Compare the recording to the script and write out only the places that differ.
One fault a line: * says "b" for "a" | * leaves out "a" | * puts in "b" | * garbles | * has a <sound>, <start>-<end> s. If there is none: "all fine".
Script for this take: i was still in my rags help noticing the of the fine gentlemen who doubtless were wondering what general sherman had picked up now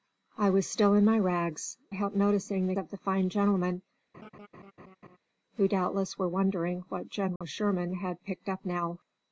* has a laugh, 4.1-5.2 s
* has a dropout, 7.4-7.4 s